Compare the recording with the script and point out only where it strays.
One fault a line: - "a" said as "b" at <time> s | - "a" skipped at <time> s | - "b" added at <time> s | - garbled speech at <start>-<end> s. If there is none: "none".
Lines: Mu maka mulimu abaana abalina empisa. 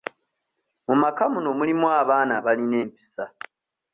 - "muno" added at 1.3 s